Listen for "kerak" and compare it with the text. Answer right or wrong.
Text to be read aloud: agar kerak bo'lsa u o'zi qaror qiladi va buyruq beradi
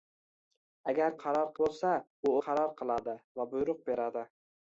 wrong